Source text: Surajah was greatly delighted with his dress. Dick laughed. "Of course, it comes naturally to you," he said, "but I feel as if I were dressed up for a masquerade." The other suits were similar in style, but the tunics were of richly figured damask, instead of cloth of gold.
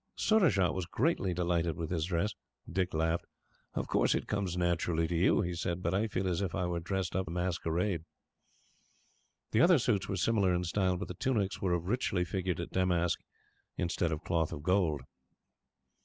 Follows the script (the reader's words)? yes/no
no